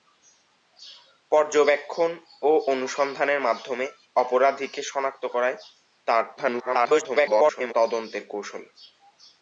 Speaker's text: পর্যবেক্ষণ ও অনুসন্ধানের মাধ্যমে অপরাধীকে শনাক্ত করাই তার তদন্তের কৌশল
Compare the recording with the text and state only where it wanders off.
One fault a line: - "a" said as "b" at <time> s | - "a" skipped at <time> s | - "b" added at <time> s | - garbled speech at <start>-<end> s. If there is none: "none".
- garbled speech at 6.4-7.7 s